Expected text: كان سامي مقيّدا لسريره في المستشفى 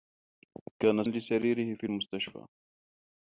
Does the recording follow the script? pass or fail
fail